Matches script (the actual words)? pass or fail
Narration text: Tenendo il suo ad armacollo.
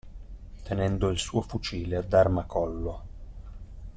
fail